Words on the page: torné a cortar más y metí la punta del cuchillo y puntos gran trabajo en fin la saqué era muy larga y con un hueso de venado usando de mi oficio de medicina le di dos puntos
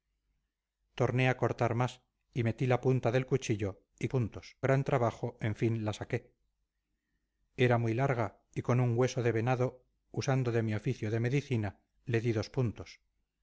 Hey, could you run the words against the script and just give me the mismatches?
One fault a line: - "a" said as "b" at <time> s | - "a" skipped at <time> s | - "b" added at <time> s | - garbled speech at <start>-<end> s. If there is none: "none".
none